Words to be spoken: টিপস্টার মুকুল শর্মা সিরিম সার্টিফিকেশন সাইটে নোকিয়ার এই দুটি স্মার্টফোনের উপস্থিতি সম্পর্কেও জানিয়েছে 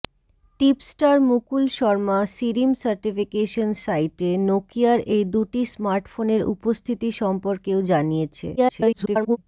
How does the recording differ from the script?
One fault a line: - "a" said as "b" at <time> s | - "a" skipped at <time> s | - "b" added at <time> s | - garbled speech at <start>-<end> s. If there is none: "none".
- garbled speech at 8.6-9.4 s